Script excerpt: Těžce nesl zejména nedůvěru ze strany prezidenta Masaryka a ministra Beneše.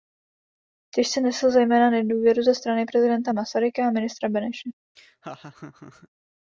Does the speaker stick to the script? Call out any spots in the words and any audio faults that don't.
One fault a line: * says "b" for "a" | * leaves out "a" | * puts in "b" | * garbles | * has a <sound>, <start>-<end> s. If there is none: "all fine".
* has a laugh, 5.0-6.1 s